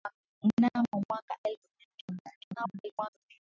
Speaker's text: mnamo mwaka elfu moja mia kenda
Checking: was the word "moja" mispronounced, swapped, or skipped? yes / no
yes